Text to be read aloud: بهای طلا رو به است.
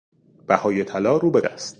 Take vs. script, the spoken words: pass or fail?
pass